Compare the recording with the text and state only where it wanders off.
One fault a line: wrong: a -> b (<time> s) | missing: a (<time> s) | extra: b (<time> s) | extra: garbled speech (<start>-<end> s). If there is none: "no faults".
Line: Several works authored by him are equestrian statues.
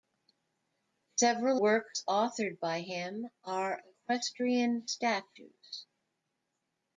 no faults